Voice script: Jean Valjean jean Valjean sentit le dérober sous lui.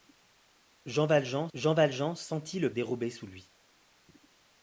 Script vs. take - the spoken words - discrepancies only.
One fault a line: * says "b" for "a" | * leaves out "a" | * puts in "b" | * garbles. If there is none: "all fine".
all fine